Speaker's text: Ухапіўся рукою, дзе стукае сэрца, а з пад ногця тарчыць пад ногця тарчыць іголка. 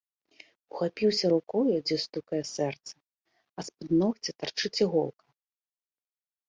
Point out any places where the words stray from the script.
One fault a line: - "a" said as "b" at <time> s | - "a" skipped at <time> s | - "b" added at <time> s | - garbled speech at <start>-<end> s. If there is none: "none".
- "пад ногця тарчыць" skipped at 4.8 s